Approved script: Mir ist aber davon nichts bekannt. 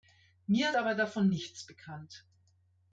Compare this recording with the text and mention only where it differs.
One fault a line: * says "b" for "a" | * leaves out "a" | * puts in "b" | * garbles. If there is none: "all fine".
* leaves out "ist"